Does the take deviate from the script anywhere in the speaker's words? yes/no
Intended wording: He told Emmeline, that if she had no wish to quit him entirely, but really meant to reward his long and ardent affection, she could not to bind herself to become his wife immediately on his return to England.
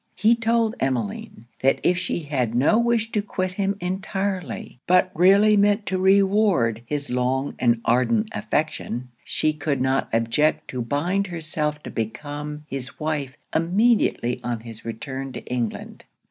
yes